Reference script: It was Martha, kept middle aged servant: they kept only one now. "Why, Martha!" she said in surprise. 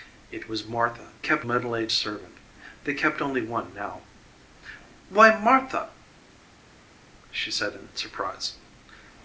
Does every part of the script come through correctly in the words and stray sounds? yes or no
yes